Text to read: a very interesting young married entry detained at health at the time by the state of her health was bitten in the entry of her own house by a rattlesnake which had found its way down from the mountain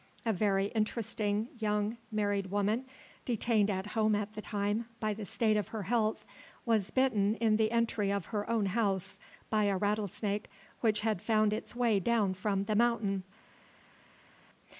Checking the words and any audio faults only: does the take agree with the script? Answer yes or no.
no